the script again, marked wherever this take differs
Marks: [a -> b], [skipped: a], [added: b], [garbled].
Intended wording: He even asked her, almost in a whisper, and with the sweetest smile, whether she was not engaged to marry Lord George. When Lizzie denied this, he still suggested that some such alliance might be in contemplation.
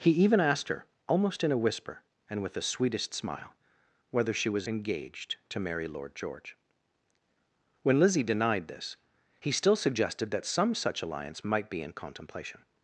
He even asked her, almost in a whisper, and with the sweetest smile, whether she was [skipped: not] engaged to marry Lord George. When Lizzie denied this, he still suggested that some such alliance might be in contemplation.